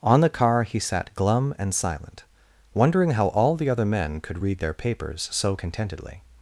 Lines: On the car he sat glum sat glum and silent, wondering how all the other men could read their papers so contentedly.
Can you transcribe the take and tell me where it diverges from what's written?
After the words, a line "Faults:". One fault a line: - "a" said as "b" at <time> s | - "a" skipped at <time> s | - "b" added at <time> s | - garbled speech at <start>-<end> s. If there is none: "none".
On the car he sat glum and silent, wondering how all the other men could read their papers so contentedly.
Faults:
- "sat glum" skipped at 1.5 s